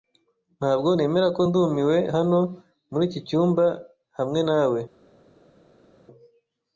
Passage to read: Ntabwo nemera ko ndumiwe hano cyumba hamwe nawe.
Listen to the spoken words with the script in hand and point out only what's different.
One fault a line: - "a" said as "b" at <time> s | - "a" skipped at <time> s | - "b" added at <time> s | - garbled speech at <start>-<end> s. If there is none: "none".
- "muri iki" added at 2.9 s